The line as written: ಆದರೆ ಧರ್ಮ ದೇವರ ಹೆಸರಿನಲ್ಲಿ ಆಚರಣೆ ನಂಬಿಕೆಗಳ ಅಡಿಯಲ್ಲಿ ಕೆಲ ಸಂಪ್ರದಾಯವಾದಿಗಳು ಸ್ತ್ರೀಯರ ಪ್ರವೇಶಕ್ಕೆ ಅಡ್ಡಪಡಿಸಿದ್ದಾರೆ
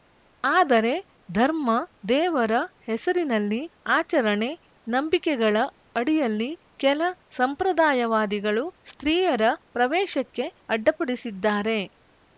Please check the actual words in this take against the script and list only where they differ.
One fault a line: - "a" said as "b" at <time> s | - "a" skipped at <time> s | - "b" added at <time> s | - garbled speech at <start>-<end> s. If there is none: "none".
none